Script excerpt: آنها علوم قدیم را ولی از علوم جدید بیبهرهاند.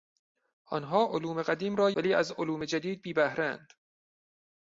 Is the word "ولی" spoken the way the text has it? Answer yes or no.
yes